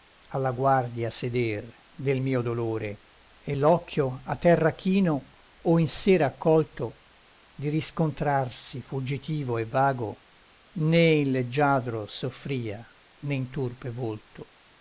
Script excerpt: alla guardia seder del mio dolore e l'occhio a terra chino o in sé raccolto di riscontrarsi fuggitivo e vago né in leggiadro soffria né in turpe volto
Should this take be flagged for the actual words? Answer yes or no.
no